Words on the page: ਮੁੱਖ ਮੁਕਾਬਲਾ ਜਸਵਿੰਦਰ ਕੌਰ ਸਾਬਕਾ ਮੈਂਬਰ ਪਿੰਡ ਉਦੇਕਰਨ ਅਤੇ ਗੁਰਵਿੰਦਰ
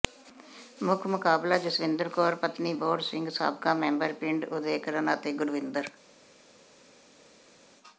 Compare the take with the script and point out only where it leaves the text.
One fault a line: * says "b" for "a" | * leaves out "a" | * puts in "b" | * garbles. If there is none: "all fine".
* puts in "ਪਤਨੀ ਬੋਹੜ ਸਿੰਘ"